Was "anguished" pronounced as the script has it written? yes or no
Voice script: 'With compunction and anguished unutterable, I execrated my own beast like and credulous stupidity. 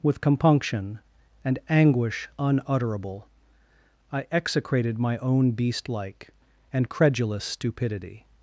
no